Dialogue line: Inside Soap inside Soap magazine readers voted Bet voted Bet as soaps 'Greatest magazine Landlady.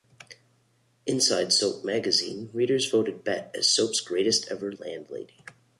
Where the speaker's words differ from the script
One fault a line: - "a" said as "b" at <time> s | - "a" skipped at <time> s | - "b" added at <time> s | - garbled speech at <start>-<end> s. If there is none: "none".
- "inside Soap" skipped at 1.9 s
- "voted Bet" skipped at 3.5 s
- "magazine" said as "ever" at 4.5 s